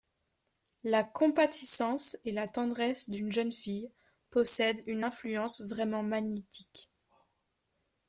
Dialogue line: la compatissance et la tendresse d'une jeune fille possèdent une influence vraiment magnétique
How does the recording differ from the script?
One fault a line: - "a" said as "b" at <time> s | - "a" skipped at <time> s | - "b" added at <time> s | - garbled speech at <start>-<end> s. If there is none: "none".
none